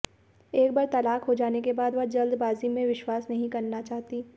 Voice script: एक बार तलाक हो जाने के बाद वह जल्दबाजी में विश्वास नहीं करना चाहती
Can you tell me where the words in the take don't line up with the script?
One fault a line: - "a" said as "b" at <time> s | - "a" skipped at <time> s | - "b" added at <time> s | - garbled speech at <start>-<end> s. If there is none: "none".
none